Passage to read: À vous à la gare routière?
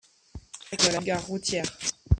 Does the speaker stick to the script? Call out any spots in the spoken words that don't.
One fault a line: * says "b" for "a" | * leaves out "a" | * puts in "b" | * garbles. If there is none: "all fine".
all fine